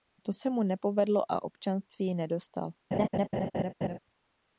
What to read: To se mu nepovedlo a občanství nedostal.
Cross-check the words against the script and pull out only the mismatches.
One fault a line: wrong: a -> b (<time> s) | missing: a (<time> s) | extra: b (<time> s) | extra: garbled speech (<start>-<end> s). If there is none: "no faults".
no faults